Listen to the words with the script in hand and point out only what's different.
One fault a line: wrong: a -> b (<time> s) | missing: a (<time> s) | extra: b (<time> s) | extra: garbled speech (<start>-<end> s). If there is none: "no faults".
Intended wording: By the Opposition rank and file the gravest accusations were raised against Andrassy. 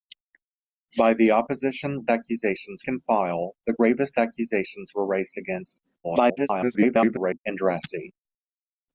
wrong: rank -> accusations (2.1 s)
extra: garbled speech (6.0-7.4 s)